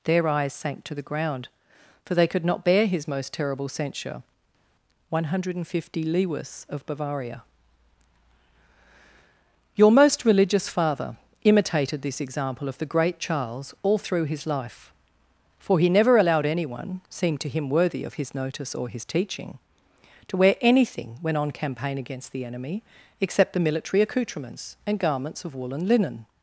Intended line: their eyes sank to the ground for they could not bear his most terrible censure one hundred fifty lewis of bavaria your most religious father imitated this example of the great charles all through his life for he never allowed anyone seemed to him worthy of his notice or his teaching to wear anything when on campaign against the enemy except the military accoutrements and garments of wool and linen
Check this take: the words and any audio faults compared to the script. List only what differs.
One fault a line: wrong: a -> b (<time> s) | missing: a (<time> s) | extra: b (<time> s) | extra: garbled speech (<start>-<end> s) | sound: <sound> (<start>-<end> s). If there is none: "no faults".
no faults